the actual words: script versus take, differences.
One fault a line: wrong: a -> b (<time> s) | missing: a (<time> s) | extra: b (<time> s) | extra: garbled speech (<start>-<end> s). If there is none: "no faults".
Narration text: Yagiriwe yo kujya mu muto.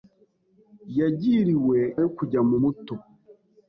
no faults